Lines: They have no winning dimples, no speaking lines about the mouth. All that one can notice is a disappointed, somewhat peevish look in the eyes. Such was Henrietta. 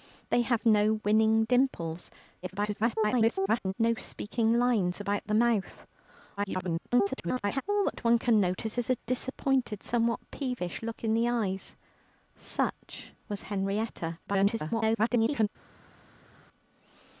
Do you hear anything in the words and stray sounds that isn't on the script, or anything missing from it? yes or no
yes